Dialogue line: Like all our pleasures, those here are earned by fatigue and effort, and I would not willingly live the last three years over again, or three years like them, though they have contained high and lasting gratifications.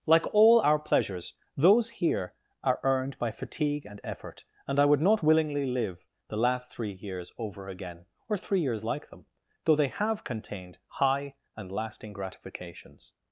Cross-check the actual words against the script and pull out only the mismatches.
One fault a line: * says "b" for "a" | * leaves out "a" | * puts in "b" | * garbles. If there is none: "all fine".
all fine